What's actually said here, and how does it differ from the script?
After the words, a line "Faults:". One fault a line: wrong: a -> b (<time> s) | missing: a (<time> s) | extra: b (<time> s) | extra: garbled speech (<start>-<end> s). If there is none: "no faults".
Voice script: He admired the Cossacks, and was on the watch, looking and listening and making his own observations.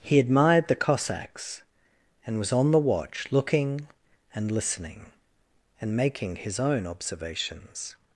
He admired the Cossacks, and was on the watch, looking and listening and making his own observations.
Faults:
no faults